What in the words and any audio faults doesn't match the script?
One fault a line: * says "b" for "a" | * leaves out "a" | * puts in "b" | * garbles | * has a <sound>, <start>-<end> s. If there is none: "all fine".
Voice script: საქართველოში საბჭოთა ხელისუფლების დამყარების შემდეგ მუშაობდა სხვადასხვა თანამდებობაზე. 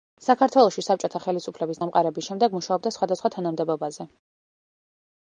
all fine